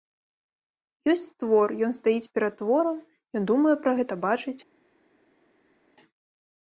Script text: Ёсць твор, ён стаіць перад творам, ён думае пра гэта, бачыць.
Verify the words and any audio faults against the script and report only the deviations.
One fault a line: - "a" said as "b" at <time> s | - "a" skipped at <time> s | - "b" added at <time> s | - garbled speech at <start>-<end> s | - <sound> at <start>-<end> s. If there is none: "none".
none